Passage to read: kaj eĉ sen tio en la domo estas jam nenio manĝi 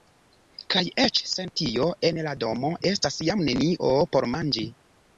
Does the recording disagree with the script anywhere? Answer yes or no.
yes